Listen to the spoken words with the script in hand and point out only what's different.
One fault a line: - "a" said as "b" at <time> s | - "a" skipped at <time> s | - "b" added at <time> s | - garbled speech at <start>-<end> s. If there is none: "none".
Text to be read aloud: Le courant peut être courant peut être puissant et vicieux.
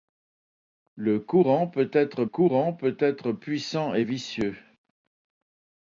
none